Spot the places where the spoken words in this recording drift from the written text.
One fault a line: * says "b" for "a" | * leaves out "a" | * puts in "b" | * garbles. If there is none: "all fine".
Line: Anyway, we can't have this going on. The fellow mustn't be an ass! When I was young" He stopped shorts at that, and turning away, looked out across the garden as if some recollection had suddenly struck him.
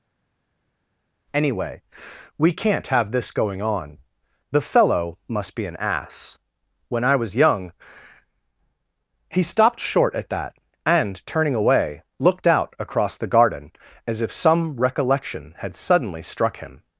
* says "must" for "mustn't"
* says "short" for "shorts"